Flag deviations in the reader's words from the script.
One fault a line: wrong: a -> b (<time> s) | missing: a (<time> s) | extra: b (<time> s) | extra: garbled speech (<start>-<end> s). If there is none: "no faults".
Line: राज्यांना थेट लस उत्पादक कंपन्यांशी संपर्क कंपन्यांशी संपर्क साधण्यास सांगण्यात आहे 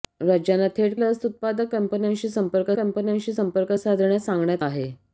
no faults